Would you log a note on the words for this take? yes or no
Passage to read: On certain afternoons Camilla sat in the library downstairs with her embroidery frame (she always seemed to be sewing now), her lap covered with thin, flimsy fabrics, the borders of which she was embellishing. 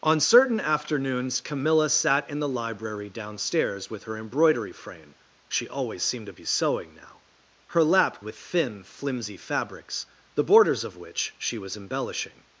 yes